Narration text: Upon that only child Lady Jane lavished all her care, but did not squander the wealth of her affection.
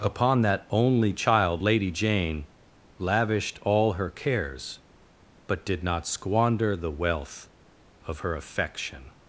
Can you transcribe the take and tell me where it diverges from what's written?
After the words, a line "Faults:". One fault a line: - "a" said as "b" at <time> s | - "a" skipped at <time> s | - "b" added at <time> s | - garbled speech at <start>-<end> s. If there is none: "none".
Upon that only child Lady Jane lavished all her cares, but did not squander the wealth of her affection.
Faults:
- "care" said as "cares" at 4.1 s